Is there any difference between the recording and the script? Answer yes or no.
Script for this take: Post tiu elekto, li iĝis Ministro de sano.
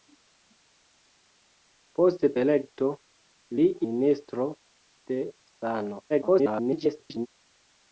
yes